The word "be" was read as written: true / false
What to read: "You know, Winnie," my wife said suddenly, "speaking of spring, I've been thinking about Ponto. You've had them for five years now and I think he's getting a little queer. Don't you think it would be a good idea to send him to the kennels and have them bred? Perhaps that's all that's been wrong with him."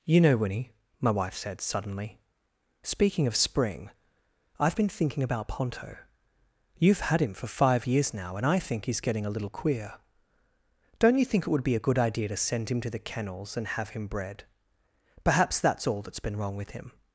true